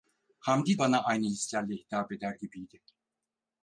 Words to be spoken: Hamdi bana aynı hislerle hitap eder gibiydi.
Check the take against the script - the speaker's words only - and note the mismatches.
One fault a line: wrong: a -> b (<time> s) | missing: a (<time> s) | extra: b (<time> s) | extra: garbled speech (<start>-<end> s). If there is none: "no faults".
no faults